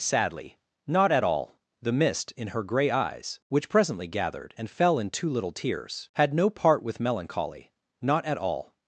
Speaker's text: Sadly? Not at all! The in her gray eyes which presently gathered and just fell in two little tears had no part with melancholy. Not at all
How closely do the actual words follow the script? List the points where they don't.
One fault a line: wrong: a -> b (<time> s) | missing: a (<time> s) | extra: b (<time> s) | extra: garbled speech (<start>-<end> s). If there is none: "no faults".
extra: mist (1.9 s)
missing: just (4.7 s)